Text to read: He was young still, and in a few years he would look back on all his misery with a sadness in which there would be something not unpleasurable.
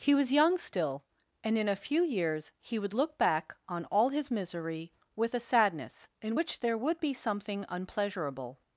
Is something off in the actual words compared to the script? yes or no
yes